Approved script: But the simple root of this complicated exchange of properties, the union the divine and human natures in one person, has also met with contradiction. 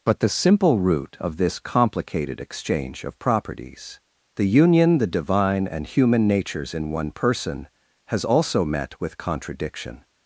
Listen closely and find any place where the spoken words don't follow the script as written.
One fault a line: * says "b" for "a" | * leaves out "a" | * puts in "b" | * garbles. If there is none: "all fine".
all fine